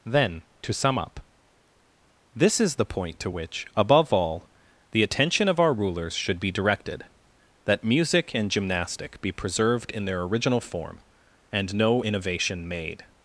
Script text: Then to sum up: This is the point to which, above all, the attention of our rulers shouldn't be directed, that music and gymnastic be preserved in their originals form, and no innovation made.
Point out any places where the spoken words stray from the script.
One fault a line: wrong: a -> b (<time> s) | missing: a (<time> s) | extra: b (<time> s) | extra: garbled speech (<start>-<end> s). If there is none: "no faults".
wrong: shouldn't -> should (6.1 s)
wrong: originals -> original (10.2 s)